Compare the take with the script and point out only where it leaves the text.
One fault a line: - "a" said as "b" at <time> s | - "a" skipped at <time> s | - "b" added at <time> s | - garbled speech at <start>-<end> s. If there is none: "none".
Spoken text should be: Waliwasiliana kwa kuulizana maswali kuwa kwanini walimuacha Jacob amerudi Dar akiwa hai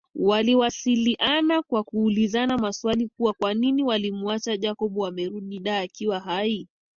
none